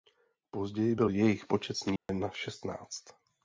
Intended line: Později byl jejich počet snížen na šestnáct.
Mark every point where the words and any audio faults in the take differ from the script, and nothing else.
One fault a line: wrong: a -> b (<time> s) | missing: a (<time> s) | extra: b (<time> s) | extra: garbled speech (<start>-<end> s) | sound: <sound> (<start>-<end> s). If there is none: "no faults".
sound: dropout (2.0-2.1 s)